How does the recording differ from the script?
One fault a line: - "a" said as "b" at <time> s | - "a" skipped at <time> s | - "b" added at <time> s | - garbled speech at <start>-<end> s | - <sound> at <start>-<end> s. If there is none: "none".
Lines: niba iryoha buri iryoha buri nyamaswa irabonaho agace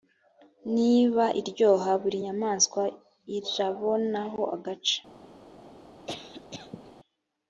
- "iryoha buri" skipped at 2.2 s
- cough at 6.1-6.9 s